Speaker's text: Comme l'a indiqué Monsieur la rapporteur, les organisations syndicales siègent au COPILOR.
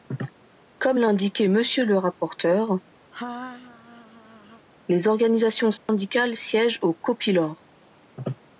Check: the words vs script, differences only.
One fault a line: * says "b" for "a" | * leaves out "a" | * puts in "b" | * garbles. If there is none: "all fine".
* says "le" for "la"